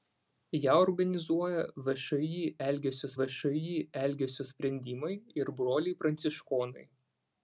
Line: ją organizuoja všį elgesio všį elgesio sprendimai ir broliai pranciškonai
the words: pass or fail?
pass